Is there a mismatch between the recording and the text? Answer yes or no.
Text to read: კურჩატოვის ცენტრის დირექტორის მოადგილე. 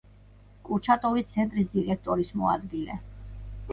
no